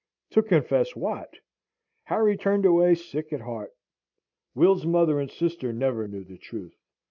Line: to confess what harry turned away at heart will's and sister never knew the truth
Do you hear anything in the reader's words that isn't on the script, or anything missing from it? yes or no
yes